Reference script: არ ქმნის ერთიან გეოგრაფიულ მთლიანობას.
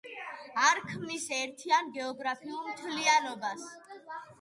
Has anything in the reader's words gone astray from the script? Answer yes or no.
no